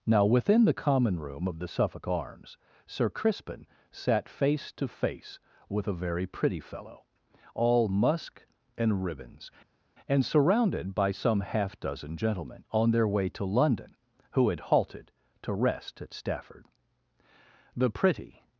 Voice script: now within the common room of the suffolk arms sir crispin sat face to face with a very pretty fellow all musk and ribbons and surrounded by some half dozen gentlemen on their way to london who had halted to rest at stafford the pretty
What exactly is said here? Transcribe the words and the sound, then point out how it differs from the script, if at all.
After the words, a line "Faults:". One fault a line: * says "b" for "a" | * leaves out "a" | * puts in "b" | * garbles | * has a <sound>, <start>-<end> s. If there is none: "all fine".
now within the common room of the suffolk arms sir crispin sat face to face with a very pretty fellow all musk and ribbons and surrounded by some half dozen gentlemen on their way to london who had halted to rest at stafford the pretty
Faults:
all fine